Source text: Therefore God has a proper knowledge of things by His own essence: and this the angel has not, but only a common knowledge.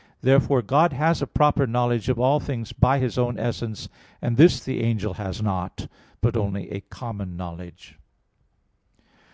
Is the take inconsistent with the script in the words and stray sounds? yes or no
yes